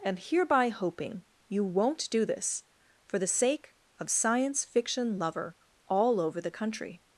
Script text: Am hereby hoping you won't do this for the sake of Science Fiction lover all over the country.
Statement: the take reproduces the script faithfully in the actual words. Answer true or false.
true